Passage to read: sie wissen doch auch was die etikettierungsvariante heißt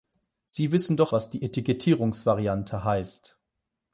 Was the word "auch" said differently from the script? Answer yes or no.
yes